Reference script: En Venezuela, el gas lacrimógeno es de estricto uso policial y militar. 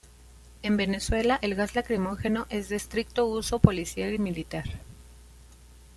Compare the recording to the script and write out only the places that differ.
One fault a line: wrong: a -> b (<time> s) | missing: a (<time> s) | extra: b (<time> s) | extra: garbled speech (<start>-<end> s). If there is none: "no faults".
no faults